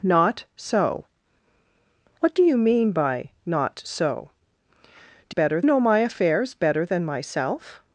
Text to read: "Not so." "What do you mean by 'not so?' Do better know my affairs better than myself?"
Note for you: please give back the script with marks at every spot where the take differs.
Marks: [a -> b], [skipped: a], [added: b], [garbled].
"Not so." "What do you mean by 'not so?' Do better know my affairs better than myself?"